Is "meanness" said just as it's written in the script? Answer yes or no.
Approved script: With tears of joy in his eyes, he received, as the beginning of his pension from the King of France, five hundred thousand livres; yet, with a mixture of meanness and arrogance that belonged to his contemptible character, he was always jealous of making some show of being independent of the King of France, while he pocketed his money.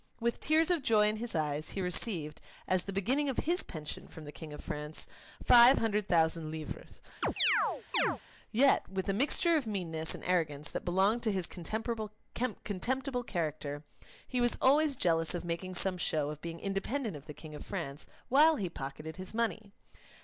yes